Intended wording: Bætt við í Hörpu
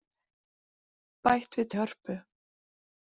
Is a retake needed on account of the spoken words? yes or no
no